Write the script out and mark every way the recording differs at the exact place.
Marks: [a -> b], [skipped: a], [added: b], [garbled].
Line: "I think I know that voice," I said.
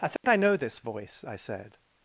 "I think I know [that -> this] voice," I said.